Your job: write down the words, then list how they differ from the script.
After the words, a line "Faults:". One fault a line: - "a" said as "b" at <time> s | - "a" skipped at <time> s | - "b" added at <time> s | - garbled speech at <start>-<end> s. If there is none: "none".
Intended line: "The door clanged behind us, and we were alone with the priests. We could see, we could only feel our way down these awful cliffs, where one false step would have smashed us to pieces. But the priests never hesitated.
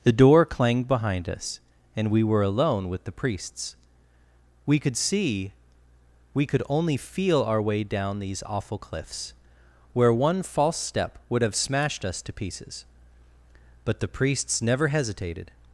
"The door clanged behind us, and we were alone with the priests. We could see, we could only feel our way down these awful cliffs, where one false step would have smashed us to pieces. But the priests never hesitated.
Faults:
none